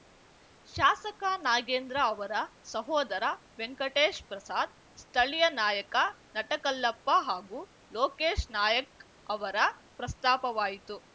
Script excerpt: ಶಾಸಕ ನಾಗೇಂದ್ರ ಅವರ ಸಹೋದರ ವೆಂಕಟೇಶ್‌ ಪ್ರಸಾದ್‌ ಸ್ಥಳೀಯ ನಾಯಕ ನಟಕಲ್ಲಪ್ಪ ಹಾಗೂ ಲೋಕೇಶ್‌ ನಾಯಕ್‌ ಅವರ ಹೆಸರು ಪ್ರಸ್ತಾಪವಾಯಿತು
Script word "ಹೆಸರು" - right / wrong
wrong